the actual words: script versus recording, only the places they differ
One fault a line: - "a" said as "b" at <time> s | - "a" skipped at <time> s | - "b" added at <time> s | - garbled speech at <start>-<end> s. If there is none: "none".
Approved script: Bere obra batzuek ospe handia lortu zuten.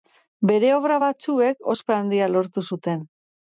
none